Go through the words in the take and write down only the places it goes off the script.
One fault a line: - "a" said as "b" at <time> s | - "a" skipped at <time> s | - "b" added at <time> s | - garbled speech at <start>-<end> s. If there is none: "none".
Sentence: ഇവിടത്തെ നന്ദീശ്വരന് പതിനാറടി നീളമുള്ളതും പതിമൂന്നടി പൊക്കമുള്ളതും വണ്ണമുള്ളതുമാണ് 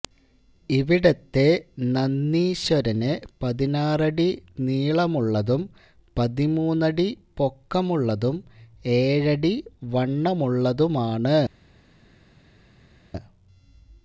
- "ഏഴടി" added at 9.0 s